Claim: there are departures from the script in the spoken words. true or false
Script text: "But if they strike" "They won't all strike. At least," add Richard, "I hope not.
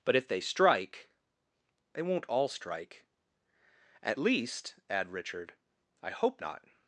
false